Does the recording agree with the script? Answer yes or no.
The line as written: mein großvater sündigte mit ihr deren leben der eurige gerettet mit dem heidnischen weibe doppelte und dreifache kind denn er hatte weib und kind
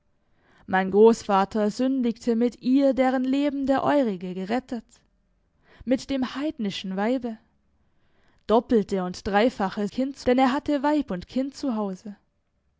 yes